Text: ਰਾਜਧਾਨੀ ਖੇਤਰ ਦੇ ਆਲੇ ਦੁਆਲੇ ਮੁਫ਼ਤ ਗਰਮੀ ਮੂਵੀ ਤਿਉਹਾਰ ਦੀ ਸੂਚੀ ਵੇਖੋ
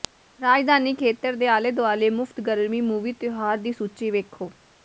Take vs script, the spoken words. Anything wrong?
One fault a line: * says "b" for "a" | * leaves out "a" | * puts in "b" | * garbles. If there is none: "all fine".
all fine